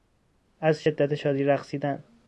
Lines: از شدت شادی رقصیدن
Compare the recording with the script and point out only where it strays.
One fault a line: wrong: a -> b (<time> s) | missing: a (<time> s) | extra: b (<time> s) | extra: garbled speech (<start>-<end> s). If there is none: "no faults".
no faults